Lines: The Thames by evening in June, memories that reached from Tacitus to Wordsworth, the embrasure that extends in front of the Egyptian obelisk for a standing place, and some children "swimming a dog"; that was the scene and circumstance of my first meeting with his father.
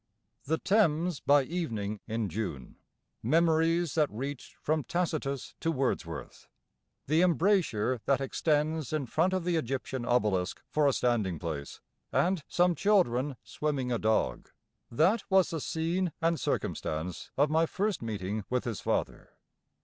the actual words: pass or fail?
pass